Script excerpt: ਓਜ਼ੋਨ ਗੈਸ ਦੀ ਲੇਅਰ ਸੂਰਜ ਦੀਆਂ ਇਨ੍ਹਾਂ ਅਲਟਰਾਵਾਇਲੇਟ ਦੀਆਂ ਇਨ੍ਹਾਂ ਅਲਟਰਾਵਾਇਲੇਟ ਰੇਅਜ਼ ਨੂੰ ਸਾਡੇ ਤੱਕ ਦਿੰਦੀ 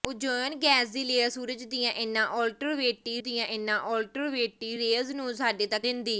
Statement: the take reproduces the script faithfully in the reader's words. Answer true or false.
true